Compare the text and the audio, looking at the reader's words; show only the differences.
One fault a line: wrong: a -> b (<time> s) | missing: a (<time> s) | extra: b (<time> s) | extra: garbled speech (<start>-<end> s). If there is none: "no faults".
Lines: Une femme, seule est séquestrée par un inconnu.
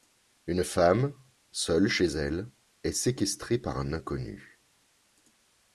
extra: chez elle (1.9 s)